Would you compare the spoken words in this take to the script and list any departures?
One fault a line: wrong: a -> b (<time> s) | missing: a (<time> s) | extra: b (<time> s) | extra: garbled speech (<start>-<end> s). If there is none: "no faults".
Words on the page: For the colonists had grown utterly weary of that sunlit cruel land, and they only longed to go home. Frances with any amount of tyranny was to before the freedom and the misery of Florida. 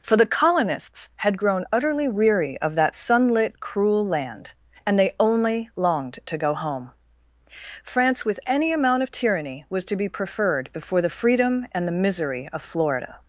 wrong: Frances -> France (7.8 s)
extra: be preferred (10.0 s)